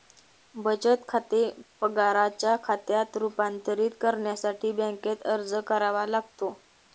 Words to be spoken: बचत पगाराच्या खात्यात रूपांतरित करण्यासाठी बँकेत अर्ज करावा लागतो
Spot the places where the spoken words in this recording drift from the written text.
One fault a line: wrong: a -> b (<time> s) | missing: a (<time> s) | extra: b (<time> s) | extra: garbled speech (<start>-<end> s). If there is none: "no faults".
extra: खाते (1.1 s)